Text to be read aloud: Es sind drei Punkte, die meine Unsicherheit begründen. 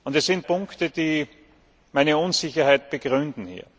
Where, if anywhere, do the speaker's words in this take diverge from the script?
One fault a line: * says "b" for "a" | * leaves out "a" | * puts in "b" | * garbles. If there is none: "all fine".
* leaves out "drei"